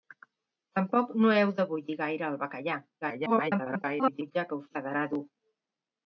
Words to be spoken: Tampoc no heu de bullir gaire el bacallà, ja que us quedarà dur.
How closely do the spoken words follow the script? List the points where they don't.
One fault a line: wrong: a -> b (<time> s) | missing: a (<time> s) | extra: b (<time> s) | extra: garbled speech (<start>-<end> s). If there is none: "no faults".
extra: garbled speech (3.0-4.3 s)